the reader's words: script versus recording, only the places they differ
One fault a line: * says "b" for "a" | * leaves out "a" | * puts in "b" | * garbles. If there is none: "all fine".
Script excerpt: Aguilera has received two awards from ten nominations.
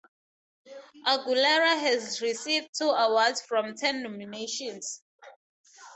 all fine